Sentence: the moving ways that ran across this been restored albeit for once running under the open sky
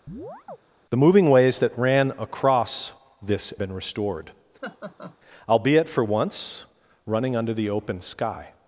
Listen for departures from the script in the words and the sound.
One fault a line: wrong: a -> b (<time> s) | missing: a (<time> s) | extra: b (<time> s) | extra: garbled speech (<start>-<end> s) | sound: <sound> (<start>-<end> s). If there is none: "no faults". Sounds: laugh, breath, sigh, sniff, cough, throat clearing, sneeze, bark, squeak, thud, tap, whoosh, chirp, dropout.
sound: chirp (0.1-0.6 s)
sound: laugh (4.6-5.2 s)